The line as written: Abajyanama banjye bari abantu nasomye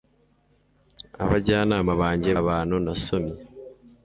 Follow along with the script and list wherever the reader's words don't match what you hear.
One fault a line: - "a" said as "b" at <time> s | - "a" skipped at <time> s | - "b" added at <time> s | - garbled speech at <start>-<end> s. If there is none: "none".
- "bari" skipped at 2.3 s